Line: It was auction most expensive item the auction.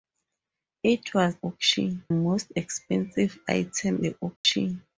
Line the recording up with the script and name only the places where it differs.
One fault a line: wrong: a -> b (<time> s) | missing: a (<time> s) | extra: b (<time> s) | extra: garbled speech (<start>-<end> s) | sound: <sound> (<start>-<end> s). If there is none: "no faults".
sound: dropout (4.4-4.4 s)